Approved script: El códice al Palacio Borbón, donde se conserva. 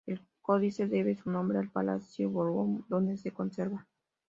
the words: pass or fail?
fail